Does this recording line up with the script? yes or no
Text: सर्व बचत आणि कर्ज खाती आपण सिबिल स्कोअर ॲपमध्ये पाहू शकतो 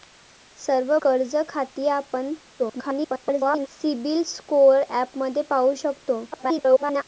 no